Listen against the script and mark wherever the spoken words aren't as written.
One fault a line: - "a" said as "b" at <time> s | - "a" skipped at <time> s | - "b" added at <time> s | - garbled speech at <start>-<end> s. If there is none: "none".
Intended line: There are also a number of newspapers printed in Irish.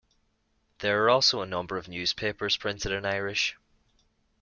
none